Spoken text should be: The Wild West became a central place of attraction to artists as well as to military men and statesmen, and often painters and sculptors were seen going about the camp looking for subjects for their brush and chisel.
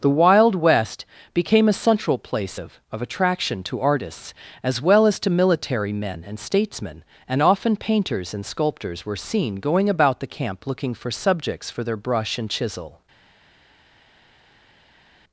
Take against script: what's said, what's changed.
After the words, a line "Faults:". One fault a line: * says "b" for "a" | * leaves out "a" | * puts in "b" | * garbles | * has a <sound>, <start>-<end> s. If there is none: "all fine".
The Wild West became a central place of of attraction to artists as well as to military men and statesmen, and often painters and sculptors were seen going about the camp looking for subjects for their brush and chisel.
Faults:
* puts in "of"